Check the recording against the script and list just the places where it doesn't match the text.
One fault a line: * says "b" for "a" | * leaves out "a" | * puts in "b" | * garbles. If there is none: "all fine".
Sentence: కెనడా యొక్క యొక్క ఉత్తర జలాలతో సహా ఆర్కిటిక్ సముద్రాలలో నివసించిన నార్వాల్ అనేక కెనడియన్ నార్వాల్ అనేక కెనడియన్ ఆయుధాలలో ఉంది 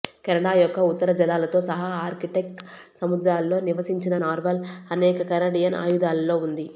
* leaves out "యొక్క"
* leaves out "నార్వాల్ అనేక కెనడియన్"